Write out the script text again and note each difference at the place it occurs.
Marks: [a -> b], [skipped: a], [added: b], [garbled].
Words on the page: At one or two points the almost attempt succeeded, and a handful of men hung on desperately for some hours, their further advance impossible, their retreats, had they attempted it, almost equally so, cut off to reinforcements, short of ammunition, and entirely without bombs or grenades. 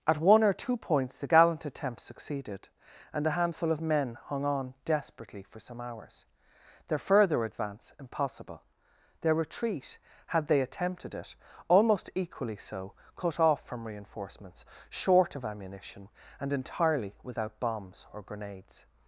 At one or two points the [almost -> gallant] attempt succeeded, and a handful of men hung on desperately for some hours, their further advance impossible, their [retreats, -> retreat] had they attempted it, almost equally so, cut off [to -> from] reinforcements, short of ammunition, and entirely without bombs or grenades.